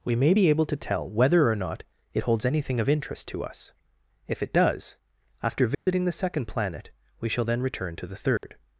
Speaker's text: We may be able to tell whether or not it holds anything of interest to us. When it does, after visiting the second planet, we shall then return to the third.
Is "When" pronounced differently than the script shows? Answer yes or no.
yes